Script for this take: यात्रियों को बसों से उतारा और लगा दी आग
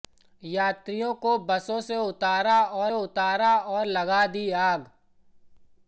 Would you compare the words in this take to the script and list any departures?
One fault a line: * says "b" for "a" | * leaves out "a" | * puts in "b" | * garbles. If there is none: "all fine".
* puts in "उतारा और"